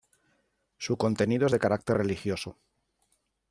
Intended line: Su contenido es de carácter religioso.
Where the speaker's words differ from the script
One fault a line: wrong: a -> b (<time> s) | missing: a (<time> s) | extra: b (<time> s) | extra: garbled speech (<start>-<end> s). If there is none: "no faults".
no faults